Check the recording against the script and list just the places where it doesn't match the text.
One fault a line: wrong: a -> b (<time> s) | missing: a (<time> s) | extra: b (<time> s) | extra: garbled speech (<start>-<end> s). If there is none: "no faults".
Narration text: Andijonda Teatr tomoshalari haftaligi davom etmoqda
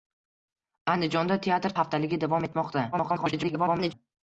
missing: tomoshalari (1.8 s)
extra: garbled speech (2.9-3.9 s)